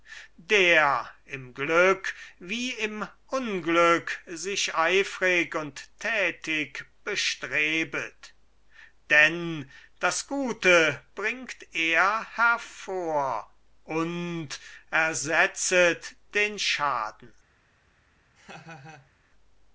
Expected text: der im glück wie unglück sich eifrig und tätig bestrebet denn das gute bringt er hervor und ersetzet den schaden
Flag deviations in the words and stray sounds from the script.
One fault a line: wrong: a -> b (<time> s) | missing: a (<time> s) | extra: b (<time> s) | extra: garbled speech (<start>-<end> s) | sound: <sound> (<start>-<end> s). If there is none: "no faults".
extra: im (2.7 s)
sound: laugh (18.4-19.1 s)